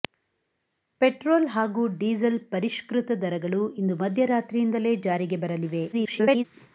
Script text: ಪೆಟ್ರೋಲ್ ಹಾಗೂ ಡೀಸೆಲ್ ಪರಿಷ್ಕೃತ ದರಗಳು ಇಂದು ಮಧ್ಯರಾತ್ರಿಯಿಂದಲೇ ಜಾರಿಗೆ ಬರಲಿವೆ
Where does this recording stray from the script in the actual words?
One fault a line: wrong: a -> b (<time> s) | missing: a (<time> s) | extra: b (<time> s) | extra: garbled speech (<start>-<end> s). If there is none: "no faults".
extra: garbled speech (5.9-6.4 s)